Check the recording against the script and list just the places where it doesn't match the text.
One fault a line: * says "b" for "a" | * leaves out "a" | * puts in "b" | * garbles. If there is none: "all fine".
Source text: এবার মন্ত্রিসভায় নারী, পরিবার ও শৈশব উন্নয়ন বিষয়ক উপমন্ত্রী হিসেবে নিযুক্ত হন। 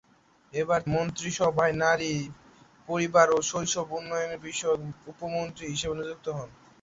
all fine